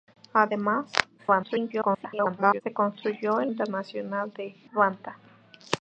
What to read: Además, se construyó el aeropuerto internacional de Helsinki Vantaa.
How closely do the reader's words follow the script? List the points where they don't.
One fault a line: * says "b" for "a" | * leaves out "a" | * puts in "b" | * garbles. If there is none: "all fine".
* garbles
* leaves out "aeropuerto"
* leaves out "Helsinki"